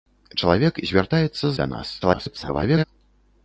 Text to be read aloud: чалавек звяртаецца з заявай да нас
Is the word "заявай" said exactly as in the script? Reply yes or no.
no